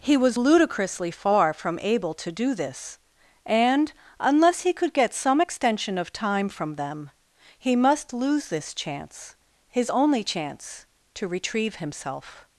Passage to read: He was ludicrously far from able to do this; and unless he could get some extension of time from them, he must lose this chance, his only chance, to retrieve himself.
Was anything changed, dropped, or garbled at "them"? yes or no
no